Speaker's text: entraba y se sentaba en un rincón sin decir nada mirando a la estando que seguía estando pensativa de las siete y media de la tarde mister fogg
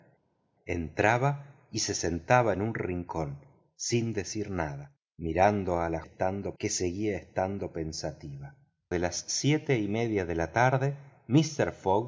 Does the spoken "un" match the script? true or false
true